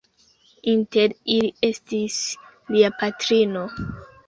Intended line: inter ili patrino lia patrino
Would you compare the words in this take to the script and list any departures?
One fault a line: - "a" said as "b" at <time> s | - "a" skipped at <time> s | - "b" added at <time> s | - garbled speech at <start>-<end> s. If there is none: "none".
- "patrino" said as "estis" at 1.7 s